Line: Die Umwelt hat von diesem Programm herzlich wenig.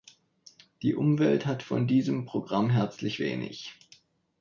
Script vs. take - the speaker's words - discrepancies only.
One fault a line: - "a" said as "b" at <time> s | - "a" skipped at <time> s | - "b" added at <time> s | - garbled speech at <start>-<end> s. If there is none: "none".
none